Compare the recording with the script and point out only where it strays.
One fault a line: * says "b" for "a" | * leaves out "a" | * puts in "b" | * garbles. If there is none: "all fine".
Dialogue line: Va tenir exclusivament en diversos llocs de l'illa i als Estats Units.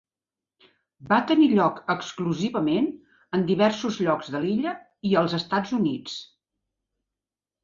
* puts in "lloc"